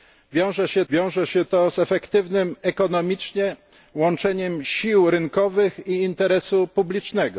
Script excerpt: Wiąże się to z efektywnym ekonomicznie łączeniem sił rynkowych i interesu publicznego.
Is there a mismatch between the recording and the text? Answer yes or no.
yes